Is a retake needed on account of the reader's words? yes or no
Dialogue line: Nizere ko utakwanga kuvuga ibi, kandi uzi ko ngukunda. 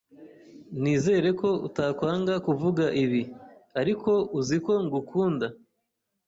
yes